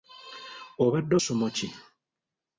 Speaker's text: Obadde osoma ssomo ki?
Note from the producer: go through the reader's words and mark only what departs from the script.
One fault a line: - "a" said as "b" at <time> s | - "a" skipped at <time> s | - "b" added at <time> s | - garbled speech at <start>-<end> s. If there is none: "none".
- "osoma" skipped at 1.1 s